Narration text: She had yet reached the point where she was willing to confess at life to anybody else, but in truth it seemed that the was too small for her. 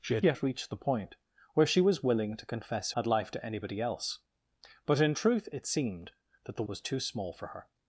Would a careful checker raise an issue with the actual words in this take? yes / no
no